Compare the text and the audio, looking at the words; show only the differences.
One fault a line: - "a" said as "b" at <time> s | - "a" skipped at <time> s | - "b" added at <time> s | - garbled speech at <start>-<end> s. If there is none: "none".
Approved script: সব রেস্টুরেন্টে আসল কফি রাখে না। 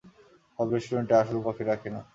none